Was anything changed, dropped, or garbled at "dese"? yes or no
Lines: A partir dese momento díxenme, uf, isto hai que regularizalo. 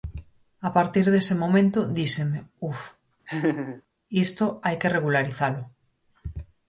no